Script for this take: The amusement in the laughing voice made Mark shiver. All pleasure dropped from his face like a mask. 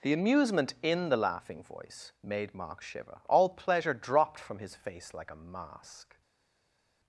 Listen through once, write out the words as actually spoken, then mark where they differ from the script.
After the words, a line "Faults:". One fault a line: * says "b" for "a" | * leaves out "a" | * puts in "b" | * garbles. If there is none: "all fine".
The amusement in the laughing voice made Mark shiver. All pleasure dropped from his face like a mask.
Faults:
all fine